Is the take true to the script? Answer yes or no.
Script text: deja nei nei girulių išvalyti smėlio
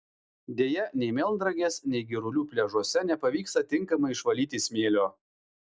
no